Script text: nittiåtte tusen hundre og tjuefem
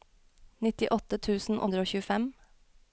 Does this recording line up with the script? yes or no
yes